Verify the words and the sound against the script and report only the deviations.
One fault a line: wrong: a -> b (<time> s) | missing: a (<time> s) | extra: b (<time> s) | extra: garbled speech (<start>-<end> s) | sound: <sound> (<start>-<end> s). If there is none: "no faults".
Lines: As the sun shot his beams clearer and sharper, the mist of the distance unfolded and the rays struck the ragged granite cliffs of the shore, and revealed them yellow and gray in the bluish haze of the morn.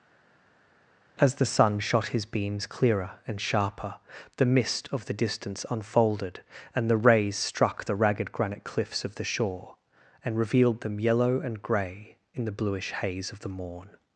no faults